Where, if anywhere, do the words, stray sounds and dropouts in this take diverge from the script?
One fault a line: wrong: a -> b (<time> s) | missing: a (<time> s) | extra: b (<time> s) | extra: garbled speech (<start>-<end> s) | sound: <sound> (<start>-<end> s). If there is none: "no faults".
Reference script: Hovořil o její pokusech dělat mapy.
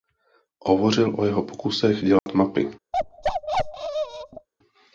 wrong: její -> jeho (1.2 s)
sound: dropout (2.2-2.3 s)
sound: bark (2.9-4.5 s)